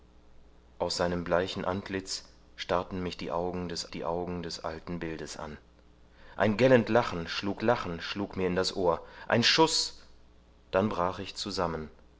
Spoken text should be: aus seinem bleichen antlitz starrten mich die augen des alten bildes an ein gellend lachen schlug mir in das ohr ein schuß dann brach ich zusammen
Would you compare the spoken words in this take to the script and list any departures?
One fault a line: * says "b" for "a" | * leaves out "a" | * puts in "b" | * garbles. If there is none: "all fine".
* puts in "die augen des"
* puts in "lachen schlug"